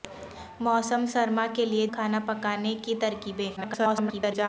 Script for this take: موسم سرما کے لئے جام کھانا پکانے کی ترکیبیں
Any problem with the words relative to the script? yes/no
yes